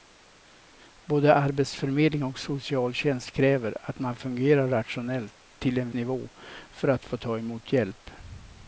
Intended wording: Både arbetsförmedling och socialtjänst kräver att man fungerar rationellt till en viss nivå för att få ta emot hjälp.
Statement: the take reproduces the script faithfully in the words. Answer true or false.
false